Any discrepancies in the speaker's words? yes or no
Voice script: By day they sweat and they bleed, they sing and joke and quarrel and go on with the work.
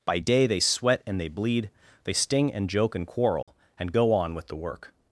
yes